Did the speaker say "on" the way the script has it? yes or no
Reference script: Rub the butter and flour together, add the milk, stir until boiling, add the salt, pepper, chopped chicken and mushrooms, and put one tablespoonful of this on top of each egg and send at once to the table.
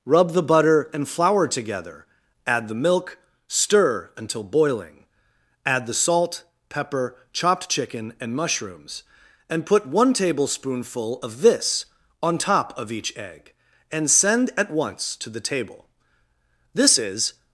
yes